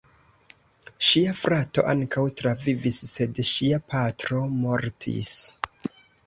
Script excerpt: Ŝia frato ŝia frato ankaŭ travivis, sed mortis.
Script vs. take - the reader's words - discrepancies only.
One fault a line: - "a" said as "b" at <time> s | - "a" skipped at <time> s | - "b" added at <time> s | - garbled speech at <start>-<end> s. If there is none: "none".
- "ŝia frato" skipped at 1.8 s
- "ŝia patro" added at 3.5 s